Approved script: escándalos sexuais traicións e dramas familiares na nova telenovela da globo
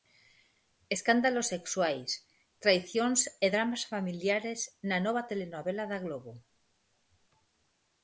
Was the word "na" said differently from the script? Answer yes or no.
no